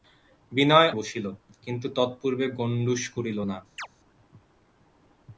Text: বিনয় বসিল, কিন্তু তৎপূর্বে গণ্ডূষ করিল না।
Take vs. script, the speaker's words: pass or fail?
pass